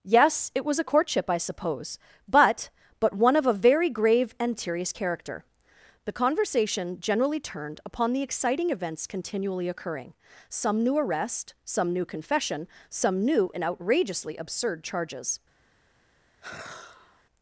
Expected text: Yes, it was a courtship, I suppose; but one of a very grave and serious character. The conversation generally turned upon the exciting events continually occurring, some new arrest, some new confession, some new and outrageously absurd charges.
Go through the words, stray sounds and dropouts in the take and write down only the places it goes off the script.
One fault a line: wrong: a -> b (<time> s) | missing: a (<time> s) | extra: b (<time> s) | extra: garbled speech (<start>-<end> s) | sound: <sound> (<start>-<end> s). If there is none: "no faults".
extra: but (3.0 s)
sound: sigh (16.4-17.2 s)